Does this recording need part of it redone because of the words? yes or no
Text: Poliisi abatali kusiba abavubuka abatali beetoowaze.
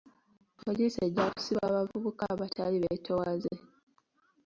yes